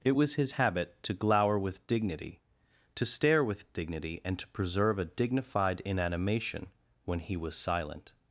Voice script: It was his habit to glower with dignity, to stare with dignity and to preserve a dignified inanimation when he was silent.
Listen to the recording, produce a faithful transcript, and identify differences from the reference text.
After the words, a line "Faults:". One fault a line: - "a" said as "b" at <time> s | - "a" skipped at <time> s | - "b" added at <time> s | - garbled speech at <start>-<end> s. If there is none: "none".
It was his habit to glower with dignity, to stare with dignity and to preserve a dignified inanimation when he was silent.
Faults:
none